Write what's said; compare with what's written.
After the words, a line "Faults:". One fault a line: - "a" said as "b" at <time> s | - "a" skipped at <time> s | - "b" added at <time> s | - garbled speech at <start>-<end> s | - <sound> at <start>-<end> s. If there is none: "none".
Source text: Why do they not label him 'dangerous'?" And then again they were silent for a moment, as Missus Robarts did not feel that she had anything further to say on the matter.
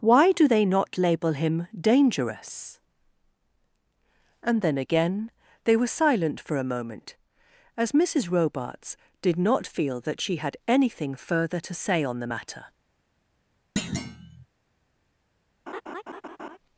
Why do they not label him 'dangerous'?" And then again they were silent for a moment, as Missus Robarts did not feel that she had anything further to say on the matter.
Faults:
- thud at 13.8-14.5 s
- laugh at 15.7-16.6 s